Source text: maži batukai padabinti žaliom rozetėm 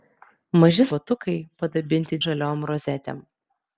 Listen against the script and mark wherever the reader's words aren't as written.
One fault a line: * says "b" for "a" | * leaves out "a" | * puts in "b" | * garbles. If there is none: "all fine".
all fine